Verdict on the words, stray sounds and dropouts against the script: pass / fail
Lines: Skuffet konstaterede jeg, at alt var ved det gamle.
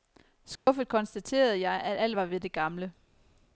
fail